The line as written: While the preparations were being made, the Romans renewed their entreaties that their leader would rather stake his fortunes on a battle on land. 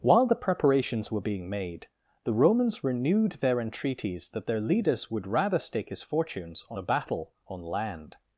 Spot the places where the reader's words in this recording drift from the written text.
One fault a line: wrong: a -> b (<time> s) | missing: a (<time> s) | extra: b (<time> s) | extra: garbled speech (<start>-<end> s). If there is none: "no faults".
wrong: leader -> leaders (4.6 s)